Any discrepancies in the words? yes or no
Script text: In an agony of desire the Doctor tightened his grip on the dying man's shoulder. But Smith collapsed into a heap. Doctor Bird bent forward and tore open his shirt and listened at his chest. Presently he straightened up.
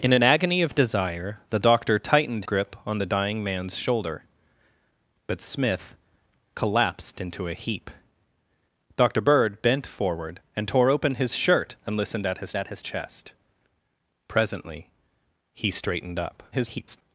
yes